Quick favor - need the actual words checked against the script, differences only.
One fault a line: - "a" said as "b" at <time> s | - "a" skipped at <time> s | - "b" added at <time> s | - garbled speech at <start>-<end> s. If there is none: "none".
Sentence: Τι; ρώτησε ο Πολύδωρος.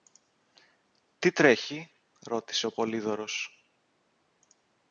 - "τρέχει" added at 1.3 s